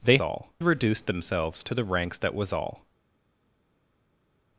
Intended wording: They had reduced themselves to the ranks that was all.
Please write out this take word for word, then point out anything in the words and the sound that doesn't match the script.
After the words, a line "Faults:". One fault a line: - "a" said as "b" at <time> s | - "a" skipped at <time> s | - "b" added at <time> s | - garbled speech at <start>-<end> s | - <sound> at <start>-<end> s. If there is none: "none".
They all reduced themselves to the ranks that was all.
Faults:
- "had" said as "all" at 0.2 s